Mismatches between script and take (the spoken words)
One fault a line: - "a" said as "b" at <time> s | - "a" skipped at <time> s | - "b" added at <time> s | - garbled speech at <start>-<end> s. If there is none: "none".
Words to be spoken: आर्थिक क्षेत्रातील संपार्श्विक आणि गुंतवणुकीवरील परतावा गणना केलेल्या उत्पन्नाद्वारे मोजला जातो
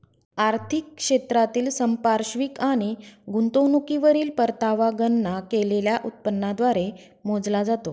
none